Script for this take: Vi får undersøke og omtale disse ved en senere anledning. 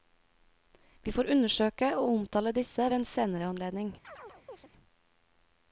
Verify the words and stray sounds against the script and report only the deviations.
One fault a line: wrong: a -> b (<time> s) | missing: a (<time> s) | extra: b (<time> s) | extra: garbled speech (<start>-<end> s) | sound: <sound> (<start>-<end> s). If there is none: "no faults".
sound: chirp (4.0-4.7 s)